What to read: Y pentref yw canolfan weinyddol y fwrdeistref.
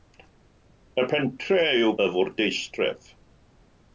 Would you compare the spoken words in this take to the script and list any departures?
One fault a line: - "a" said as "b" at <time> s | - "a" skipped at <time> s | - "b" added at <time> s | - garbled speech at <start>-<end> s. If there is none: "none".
- "canolfan weinyddol" skipped at 1.9 s